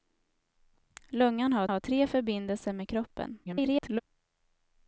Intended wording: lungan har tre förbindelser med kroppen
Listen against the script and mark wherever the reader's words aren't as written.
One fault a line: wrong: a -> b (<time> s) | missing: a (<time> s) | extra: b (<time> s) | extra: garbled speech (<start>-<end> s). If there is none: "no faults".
extra: har (1.7 s)
extra: garbled speech (3.4-4.0 s)